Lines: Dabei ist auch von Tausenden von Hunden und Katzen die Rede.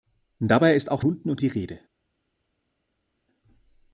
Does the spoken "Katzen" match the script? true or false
false